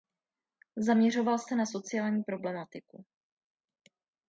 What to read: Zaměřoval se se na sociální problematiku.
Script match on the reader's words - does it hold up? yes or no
no